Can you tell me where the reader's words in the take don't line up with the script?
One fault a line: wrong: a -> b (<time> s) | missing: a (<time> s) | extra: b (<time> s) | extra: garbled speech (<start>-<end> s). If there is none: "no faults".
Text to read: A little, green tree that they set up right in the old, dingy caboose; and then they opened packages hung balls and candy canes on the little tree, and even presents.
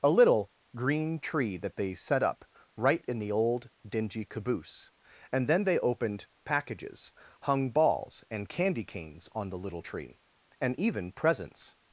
no faults